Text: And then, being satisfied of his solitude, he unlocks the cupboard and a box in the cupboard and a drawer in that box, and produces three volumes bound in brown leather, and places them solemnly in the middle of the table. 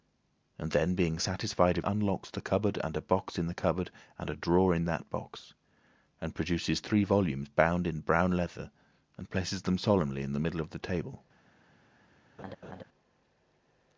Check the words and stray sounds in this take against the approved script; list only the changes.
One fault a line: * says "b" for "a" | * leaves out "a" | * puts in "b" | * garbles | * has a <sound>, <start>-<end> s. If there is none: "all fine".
* leaves out "his solitude he"
* has a laugh, 12.4-12.8 s